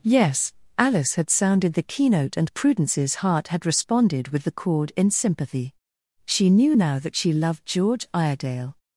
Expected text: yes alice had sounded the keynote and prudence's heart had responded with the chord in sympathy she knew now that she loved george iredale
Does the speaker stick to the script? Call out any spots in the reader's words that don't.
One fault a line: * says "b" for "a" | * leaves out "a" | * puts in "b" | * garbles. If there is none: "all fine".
all fine